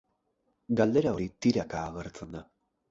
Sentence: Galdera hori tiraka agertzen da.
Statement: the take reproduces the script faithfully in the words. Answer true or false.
true